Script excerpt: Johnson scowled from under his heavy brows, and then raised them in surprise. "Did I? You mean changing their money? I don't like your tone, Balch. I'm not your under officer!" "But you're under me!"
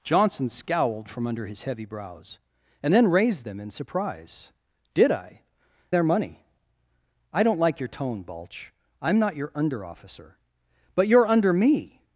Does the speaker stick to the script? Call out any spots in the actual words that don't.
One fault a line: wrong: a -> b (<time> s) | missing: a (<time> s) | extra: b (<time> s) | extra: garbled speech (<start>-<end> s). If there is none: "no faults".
missing: You mean changing (5.4 s)